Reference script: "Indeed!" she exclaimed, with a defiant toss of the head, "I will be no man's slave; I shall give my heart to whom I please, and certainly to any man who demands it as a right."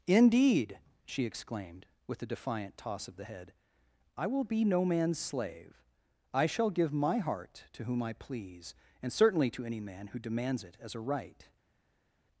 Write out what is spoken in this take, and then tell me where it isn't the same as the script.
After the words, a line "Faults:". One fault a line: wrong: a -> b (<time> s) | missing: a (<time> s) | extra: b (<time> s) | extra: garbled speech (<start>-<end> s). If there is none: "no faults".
"Indeed!" she exclaimed, with a defiant toss of the head, "I will be no man's slave; I shall give my heart to whom I please, and certainly to any man who demands it as a right."
Faults:
no faults